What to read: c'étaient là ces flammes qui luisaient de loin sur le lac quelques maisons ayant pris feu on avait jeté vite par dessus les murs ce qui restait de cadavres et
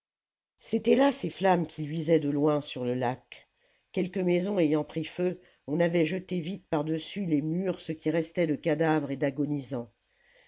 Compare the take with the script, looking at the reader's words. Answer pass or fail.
pass